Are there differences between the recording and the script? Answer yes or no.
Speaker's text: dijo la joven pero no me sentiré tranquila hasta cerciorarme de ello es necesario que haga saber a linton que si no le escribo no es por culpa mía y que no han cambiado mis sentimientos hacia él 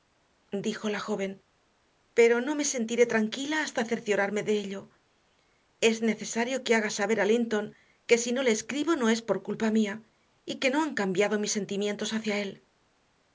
no